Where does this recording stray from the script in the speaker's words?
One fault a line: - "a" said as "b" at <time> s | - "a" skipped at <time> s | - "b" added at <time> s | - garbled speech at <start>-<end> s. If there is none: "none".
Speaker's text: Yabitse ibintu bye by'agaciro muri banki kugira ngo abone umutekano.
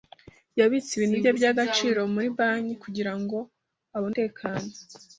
none